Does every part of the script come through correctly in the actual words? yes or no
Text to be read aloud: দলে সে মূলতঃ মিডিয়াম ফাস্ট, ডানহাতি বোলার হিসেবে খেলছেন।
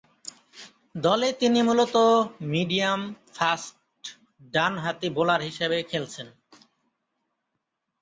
no